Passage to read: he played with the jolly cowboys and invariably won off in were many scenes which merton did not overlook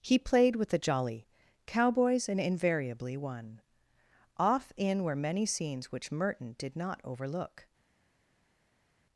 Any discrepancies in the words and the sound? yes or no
no